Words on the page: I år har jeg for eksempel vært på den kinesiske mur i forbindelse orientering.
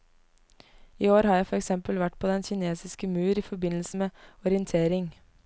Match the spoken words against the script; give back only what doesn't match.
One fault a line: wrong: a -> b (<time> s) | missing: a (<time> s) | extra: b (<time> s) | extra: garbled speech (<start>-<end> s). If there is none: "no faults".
extra: med (3.9 s)